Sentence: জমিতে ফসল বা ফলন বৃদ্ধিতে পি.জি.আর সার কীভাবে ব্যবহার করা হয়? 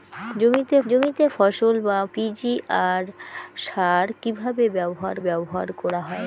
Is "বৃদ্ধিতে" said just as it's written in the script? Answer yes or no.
no